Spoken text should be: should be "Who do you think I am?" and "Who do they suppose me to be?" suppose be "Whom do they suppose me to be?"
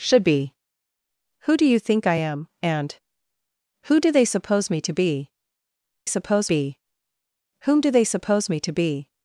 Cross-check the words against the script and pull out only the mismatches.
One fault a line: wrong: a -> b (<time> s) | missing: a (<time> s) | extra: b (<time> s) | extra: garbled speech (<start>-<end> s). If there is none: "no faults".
no faults